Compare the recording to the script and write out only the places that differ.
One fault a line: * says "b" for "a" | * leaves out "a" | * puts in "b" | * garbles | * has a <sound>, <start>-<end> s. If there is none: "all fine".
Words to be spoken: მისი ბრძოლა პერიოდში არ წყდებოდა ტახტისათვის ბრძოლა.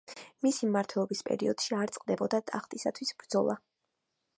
* says "მმართველობის" for "ბრძოლა"